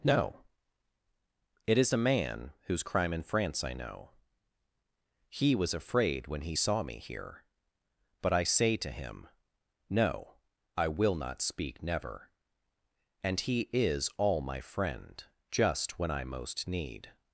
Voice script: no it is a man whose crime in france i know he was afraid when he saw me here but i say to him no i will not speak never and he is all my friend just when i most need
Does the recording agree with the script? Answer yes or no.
yes